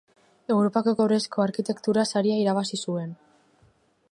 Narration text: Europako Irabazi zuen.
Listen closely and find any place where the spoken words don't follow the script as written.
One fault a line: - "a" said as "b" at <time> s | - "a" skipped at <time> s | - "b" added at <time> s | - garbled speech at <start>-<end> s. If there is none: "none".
- "Kobrezko Arkitektura Saria" added at 1.0 s